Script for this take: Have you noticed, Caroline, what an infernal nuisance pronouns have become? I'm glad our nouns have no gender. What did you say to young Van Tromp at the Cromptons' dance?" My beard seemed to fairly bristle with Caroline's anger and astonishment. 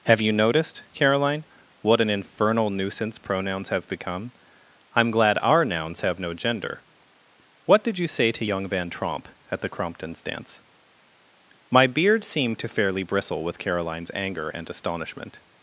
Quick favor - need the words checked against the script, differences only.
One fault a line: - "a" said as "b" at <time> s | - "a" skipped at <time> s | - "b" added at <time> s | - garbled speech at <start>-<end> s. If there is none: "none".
none